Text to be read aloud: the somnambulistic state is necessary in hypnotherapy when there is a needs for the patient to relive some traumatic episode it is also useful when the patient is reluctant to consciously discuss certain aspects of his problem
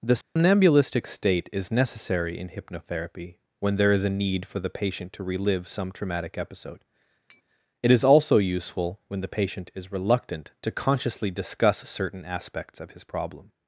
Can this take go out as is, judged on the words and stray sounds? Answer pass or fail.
fail